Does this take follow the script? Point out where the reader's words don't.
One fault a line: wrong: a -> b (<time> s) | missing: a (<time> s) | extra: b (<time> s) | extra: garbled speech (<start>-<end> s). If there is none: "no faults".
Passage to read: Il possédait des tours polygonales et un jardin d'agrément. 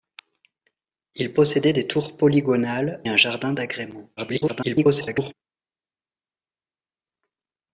missing: et (3.0 s)
extra: garbled speech (4.2-5.3 s)